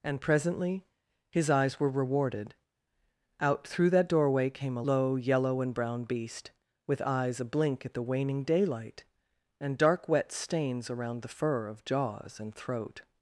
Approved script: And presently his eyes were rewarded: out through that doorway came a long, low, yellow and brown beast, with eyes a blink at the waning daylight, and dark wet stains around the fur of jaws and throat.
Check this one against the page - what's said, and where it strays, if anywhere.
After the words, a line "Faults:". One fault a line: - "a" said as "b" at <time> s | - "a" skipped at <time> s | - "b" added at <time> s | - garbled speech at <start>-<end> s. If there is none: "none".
And presently his eyes were rewarded: out through that doorway came a low, yellow and brown beast, with eyes a blink at the waning daylight, and dark wet stains around the fur of jaws and throat.
Faults:
- "long" skipped at 4.8 s